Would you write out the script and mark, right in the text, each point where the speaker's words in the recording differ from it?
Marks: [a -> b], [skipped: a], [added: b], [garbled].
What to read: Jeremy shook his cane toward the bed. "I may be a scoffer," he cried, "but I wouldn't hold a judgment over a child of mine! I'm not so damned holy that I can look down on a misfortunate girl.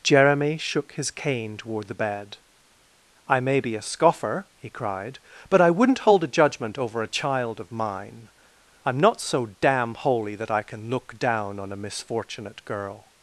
Jeremy shook his cane toward the bed. "I may be a scoffer," he cried, "but I wouldn't hold a judgment over a child of mine! I'm not so [damned -> damn] holy that I can look down on a misfortunate girl.